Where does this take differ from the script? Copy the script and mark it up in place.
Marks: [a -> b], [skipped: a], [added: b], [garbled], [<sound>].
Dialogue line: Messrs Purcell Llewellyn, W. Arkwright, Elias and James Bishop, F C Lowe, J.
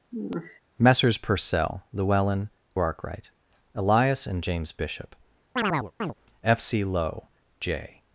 [sigh] Messrs Purcell Llewellyn, [skipped: W.] Arkwright, Elias and James Bishop, [chirp] F C Lowe, J.